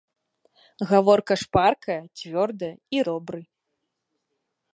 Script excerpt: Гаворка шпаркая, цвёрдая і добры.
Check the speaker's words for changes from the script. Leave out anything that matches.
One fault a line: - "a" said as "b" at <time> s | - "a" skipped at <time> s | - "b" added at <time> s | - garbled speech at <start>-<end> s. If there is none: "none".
none